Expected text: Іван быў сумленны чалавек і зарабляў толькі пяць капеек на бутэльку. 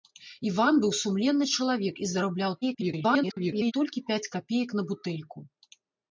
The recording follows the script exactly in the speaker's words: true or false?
false